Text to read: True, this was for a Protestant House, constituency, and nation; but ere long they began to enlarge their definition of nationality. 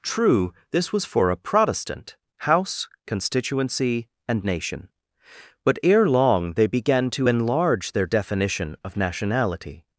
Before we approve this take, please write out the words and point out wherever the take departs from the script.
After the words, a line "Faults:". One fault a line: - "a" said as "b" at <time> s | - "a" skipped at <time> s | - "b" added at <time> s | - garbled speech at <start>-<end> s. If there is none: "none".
True, this was for a Protestant House, constituency, and nation; but ere long they began to enlarge their definition of nationality.
Faults:
none